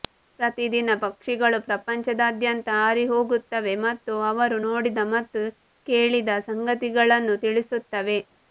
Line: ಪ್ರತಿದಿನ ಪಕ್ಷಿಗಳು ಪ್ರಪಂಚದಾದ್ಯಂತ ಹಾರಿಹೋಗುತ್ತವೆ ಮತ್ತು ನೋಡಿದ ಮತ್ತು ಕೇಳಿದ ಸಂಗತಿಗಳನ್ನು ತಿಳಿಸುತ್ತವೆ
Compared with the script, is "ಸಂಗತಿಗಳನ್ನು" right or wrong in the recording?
right